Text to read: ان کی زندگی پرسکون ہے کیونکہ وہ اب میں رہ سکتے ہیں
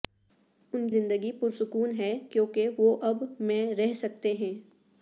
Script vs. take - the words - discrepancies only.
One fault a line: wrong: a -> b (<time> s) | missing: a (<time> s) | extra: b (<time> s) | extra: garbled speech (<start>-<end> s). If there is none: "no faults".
missing: کی (0.9 s)